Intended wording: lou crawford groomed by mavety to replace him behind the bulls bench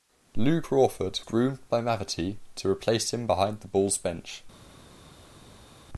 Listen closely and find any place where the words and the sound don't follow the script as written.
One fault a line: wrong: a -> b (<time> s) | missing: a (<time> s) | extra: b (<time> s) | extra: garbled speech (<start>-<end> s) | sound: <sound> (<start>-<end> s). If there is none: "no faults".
no faults